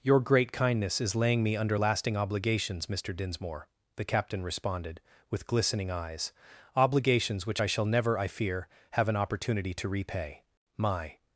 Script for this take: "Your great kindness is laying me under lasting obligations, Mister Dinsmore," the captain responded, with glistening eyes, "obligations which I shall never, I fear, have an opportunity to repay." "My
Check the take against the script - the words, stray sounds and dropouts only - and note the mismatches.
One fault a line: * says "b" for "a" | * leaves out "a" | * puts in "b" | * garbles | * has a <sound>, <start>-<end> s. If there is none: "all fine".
all fine